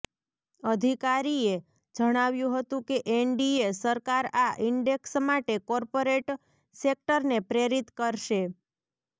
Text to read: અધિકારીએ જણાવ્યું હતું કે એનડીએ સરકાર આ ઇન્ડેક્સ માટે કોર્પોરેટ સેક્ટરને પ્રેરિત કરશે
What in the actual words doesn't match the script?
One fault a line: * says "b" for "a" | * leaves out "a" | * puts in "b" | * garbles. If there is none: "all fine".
all fine